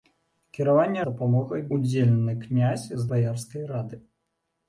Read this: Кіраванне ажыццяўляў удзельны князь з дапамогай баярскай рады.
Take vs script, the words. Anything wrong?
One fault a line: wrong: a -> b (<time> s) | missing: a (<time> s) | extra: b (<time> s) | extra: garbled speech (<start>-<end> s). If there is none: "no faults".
wrong: ажыццяўляў -> дапамогай (1.1 s)
missing: дапамогай (3.1 s)